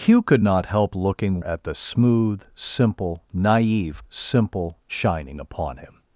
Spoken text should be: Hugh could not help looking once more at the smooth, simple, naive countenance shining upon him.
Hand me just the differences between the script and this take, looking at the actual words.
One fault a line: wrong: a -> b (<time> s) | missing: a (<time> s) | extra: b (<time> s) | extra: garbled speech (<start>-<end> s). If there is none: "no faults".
missing: once more (1.4 s)
wrong: countenance -> simple (4.1 s)